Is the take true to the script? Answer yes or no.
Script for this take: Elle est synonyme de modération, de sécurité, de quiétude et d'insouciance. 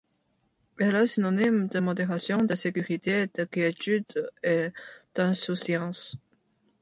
yes